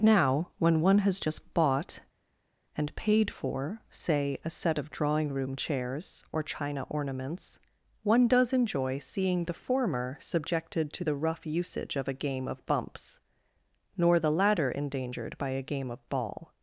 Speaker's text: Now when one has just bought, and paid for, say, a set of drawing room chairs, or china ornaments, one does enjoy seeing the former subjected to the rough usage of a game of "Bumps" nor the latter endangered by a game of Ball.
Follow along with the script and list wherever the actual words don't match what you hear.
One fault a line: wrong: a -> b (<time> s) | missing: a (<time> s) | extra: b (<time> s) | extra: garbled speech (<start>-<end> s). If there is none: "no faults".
no faults